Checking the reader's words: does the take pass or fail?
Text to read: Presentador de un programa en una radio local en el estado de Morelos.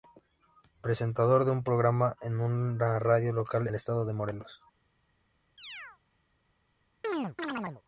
fail